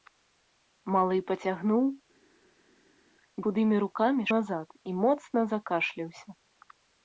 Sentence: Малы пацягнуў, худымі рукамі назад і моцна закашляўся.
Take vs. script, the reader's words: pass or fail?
pass